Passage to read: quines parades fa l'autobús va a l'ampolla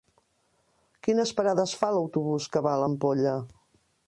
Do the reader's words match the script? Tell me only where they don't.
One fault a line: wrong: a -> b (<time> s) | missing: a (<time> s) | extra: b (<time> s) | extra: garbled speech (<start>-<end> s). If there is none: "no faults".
extra: que (2.5 s)